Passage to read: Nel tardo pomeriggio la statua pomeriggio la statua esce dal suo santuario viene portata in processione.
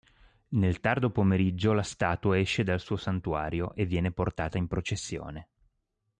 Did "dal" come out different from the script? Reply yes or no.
no